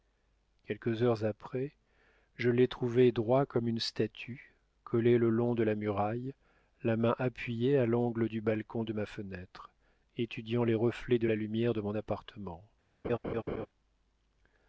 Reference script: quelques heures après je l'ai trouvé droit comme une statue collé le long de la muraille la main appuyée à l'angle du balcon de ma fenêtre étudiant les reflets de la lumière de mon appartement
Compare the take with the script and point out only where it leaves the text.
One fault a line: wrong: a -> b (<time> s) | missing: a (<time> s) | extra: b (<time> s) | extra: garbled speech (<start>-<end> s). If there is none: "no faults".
no faults